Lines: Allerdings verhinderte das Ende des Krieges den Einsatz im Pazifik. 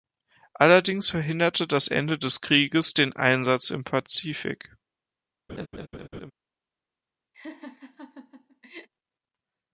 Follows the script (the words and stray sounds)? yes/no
no